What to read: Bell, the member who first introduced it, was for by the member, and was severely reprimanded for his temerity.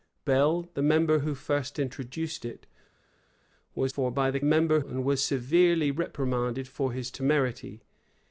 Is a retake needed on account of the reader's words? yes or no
no